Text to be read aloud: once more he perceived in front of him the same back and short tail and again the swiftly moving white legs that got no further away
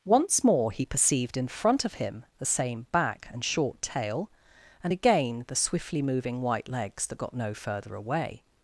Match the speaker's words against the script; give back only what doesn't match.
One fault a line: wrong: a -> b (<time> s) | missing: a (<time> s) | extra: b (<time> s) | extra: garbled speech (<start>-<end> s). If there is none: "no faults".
no faults